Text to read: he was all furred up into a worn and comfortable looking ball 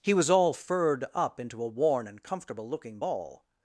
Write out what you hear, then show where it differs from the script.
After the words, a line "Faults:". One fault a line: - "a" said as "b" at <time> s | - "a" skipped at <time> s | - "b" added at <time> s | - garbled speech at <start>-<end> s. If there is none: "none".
he was all furred up into a worn and comfortable looking ball
Faults:
none